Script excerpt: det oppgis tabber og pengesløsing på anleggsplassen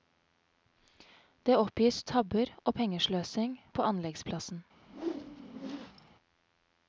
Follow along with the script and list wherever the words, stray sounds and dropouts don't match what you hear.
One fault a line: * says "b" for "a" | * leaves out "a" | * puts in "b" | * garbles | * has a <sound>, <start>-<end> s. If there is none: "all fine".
* has a whoosh, 4.8-6.1 s